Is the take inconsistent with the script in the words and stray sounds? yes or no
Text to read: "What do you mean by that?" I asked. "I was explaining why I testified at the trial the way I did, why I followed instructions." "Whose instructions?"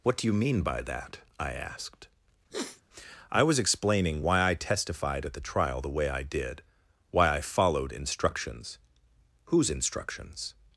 yes